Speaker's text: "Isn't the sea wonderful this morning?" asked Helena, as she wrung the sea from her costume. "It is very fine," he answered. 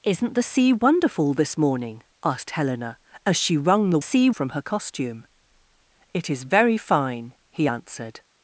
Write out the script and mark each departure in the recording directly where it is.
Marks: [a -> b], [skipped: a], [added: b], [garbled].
"Isn't the sea wonderful this morning?" asked Helena, as she wrung the sea from her costume. "It is very fine," he answered.